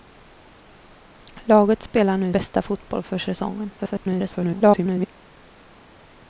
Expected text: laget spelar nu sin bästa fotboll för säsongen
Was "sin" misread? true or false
true